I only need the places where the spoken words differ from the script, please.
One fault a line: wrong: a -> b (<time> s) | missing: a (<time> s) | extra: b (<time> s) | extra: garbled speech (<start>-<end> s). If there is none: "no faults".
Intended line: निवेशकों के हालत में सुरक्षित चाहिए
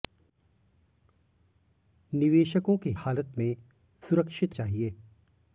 no faults